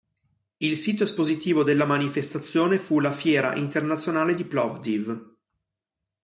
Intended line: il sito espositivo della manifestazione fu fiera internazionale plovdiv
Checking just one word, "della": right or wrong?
right